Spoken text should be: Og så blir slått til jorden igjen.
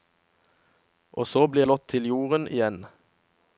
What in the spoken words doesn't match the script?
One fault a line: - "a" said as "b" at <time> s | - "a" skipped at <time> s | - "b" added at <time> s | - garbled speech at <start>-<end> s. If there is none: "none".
none